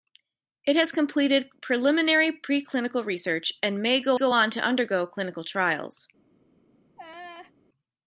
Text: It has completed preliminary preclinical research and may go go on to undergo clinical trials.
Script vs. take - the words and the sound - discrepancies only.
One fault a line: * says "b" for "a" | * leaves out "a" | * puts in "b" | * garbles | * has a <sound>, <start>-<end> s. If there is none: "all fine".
* has a laugh, 7.0-7.5 s